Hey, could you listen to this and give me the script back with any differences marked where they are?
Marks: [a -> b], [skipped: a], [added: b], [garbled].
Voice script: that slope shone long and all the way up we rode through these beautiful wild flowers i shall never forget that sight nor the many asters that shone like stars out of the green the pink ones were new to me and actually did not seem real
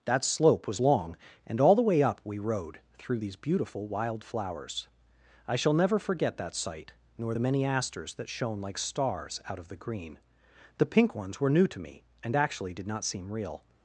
that slope [shone -> was] long and all the way up we rode through these beautiful wild flowers i shall never forget that sight nor the many asters that shone like stars out of the green the pink ones were new to me and actually did not seem real